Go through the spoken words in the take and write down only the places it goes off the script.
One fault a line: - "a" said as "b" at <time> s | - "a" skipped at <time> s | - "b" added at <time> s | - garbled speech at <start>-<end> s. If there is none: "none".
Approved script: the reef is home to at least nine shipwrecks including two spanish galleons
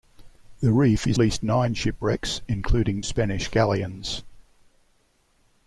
- "home to at" skipped at 1.2 s
- "two" skipped at 3.0 s